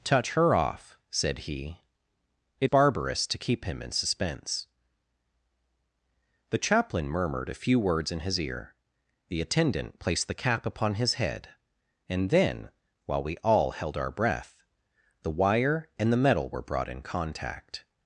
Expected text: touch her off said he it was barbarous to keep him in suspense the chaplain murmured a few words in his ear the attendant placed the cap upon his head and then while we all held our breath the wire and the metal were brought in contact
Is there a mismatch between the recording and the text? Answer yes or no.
yes